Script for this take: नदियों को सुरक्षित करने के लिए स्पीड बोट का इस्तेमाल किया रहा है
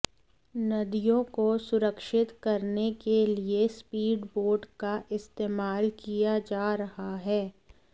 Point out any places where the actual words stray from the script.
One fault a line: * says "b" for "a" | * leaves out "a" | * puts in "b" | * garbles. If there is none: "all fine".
* puts in "जा"